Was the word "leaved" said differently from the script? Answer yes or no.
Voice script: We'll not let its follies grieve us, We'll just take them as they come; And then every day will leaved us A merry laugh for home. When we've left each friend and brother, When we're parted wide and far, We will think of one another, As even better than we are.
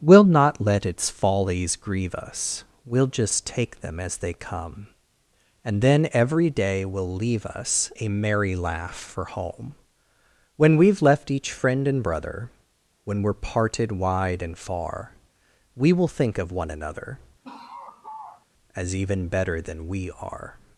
yes